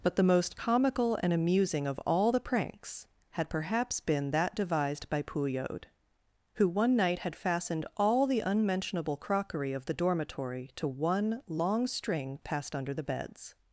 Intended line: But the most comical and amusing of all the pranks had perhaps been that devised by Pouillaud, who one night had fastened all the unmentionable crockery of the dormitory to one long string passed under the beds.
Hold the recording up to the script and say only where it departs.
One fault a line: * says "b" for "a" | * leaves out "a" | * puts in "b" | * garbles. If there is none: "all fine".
all fine